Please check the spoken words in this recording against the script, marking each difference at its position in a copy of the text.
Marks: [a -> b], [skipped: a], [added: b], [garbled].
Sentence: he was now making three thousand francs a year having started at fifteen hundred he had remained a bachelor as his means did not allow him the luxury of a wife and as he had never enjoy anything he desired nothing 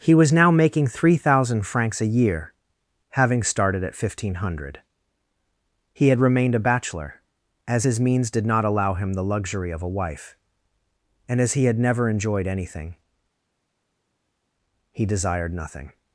he was now making three thousand francs a year having started at fifteen hundred he had remained a bachelor as his means did not allow him the luxury of a wife and as he had never [enjoy -> enjoyed] anything he desired nothing